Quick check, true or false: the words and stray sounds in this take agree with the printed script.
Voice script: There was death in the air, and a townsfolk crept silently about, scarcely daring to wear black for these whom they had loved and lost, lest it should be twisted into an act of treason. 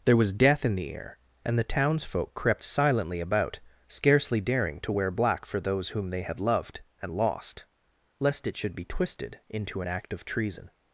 false